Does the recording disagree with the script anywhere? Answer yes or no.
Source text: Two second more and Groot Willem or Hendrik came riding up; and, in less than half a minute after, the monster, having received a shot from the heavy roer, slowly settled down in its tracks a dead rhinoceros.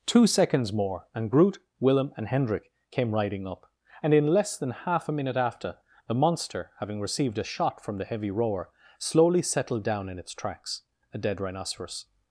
yes